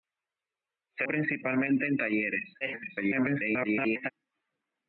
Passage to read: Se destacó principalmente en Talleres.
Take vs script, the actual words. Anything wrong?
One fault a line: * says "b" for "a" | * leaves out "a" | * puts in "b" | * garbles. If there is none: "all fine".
* leaves out "destacó"
* garbles